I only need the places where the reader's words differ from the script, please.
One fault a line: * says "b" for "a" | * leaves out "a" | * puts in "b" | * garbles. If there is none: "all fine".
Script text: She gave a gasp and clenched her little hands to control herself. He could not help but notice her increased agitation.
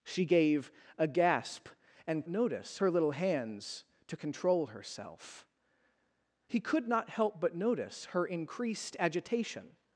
* says "notice" for "clenched"